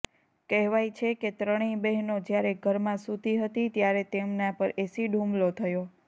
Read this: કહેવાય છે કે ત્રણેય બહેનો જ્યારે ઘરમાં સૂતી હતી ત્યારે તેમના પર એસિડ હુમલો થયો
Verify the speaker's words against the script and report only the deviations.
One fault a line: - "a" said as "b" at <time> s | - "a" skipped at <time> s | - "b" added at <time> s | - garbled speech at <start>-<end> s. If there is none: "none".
none